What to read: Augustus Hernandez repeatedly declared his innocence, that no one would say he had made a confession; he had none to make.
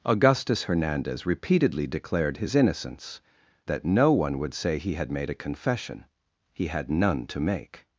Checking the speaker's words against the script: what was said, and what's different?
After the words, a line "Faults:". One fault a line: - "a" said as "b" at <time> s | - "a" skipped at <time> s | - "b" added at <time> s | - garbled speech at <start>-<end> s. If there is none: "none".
Augustus Hernandez repeatedly declared his innocence, that no one would say he had made a confession; he had none to make.
Faults:
none